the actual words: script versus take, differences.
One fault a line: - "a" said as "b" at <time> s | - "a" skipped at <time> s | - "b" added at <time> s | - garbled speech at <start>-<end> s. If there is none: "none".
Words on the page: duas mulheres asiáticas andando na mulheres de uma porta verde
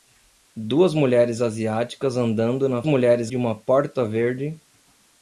none